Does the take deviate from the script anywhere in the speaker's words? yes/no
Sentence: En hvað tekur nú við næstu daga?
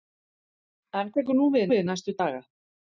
yes